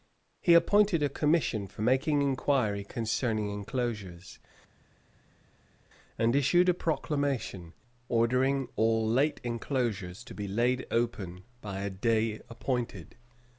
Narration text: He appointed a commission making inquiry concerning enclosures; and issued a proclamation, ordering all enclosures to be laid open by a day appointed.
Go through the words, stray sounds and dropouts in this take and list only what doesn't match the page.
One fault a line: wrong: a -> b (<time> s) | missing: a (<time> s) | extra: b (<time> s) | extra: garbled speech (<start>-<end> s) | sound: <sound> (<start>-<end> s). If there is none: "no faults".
extra: for (1.7 s)
extra: late (9.1 s)